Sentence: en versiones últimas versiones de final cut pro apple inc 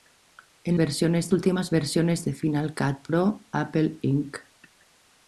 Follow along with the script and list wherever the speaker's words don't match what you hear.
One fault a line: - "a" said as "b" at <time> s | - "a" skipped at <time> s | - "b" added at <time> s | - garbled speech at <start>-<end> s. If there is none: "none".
none